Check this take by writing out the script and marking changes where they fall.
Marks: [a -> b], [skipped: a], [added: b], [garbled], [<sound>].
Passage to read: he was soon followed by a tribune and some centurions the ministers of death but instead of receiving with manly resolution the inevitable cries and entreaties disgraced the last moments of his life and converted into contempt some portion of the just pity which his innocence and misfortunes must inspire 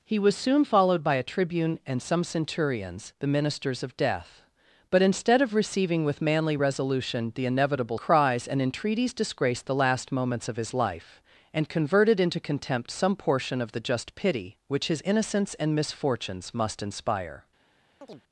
he was soon followed by a tribune and some centurions the ministers of death but instead of receiving with manly resolution the inevitable cries and entreaties disgraced the last moments of his life and converted into contempt some portion of the just pity which his innocence and misfortunes must inspire [chirp]